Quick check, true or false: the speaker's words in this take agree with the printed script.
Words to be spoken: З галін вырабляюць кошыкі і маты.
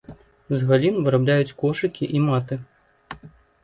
true